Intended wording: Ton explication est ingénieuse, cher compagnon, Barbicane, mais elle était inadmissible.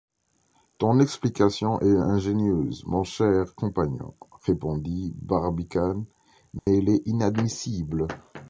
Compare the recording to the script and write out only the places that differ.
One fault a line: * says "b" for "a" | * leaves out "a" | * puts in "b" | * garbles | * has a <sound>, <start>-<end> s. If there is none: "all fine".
* puts in "mon"
* puts in "répondit"
* has a dropout, 6.6-6.7 s
* says "est" for "était"